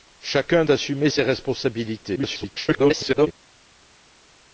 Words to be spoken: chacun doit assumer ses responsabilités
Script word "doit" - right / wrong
wrong